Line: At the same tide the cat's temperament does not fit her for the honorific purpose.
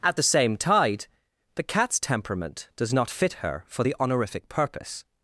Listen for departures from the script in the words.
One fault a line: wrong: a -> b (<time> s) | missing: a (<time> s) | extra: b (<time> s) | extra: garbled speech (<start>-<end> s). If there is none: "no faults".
no faults